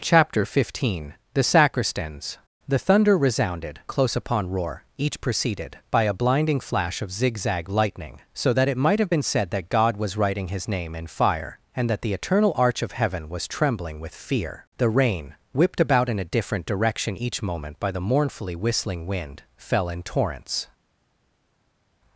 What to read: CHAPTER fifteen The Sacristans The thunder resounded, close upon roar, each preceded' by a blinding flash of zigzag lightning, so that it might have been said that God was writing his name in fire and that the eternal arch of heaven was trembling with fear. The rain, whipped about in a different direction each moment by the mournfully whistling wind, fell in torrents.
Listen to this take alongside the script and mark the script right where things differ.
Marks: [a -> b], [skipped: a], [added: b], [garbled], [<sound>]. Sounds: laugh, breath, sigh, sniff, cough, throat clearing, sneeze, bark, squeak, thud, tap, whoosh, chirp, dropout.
CHAPTER fifteen The Sacristans The thunder resounded, close upon roar, each preceded' by a blinding flash of zigzag lightning, so that it might have been said that God was writing his name in fire and that the eternal arch of heaven was trembling with fear. The rain, whipped about in a different direction each moment by the mournfully whistling wind, fell in torrents.